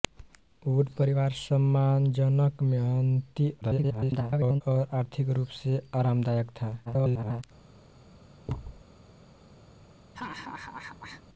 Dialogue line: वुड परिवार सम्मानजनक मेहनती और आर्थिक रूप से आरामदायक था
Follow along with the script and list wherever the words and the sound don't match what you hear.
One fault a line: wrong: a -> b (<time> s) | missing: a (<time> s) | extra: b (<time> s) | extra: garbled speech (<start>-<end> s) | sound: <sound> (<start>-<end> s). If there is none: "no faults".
extra: garbled speech (3.6-4.6 s)
extra: garbled speech (6.9-7.4 s)
sound: thud (8.5-8.8 s)
sound: laugh (10.1-11.2 s)